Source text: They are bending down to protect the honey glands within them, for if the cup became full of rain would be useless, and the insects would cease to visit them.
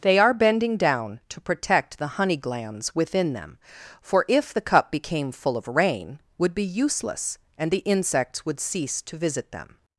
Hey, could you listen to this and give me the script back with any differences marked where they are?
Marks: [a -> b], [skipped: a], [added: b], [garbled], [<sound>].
They are bending down to protect the honey glands within them, for if the cup became full of rain would be useless, and the insects would cease to visit them.